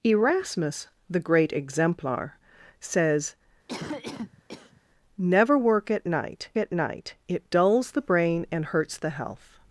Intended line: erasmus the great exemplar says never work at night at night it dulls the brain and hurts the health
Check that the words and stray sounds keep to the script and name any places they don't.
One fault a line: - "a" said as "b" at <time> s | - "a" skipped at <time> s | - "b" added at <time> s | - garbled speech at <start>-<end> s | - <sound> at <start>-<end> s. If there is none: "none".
- cough at 3.7-4.8 s